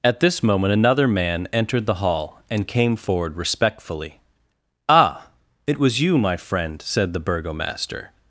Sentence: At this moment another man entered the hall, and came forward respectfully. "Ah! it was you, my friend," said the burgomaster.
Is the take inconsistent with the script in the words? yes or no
no